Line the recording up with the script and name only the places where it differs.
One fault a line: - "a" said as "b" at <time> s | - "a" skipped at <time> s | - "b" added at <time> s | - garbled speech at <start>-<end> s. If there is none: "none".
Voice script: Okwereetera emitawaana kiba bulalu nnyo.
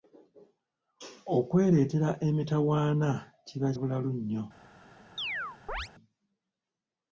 none